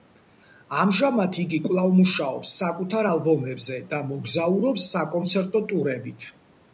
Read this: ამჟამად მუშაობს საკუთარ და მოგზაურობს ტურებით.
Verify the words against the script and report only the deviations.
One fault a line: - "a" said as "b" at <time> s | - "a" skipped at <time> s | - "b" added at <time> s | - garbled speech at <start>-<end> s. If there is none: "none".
- "იგი კვლავ" added at 1.4 s
- "ალბომებზე" added at 3.1 s
- "საკონცერტო" added at 4.9 s